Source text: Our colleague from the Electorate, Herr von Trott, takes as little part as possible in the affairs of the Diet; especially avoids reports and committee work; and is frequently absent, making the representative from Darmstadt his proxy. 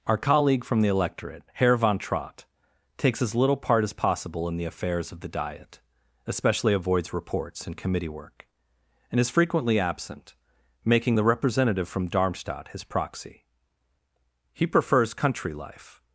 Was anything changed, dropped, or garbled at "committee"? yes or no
no